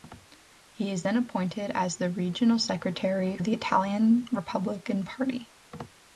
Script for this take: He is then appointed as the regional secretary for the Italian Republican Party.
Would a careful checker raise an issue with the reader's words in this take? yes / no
yes